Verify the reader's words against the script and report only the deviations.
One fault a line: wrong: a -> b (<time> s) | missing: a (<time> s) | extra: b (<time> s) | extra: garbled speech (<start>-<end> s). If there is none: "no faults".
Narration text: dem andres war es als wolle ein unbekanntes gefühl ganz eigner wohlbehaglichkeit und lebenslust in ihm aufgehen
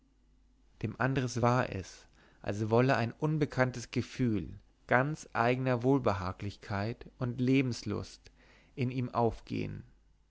no faults